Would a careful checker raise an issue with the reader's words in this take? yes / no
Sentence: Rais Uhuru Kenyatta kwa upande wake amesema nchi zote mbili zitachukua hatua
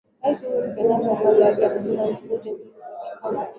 no